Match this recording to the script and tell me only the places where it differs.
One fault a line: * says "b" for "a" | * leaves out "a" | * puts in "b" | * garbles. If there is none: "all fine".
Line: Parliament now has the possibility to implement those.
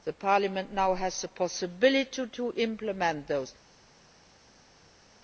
all fine